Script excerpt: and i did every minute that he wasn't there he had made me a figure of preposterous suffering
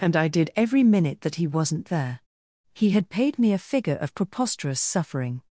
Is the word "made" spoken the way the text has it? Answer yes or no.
no